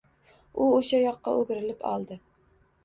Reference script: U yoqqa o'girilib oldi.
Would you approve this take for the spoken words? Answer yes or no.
no